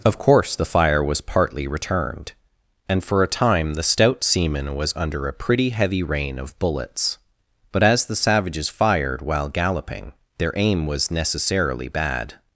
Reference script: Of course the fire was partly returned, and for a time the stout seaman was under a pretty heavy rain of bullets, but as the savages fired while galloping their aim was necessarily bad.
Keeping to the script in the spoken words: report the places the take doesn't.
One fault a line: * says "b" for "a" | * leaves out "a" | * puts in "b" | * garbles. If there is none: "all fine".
all fine